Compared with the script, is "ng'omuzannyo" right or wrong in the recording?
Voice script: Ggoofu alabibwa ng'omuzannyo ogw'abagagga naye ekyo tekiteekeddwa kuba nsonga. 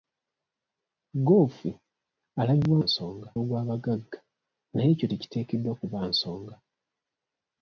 wrong